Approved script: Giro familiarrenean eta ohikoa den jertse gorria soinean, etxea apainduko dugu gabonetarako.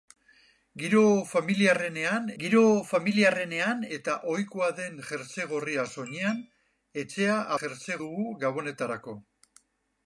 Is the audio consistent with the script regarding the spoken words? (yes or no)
no